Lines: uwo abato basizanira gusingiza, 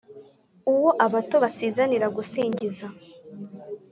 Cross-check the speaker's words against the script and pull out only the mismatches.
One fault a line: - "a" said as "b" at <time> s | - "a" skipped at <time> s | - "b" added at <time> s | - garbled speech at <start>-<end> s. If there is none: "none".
none